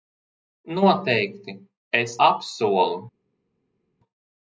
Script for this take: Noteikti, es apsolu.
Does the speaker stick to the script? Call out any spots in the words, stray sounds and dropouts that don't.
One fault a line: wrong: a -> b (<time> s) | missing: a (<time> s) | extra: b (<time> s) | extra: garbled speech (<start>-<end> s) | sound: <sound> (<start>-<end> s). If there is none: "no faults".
no faults